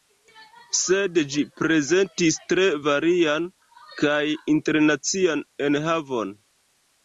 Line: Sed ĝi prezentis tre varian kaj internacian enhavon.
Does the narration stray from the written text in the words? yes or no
no